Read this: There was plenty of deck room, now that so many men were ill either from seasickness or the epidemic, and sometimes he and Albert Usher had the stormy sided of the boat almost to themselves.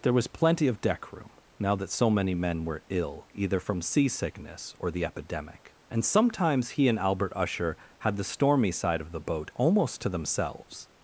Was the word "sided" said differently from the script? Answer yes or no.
yes